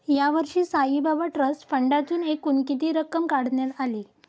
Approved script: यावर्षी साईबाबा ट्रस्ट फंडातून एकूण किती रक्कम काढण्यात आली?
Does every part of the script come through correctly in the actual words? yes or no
yes